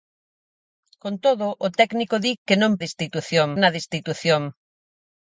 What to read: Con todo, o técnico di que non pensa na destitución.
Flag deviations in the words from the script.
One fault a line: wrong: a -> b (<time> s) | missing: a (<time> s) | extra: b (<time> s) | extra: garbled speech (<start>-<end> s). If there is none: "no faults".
wrong: pensa -> destitución (2.8 s)